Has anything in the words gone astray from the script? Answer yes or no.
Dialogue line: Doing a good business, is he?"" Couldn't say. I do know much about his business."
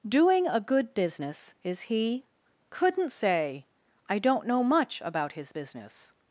yes